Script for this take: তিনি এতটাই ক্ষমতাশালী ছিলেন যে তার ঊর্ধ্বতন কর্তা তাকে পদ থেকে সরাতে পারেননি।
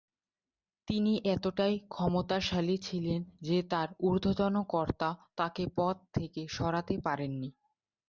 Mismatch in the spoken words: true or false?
false